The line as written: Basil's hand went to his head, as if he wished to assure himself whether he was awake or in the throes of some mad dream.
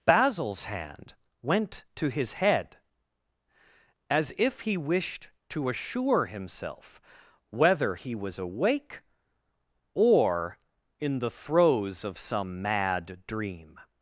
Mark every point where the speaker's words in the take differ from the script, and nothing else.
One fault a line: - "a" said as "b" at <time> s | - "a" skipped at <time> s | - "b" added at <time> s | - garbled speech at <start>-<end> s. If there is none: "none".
none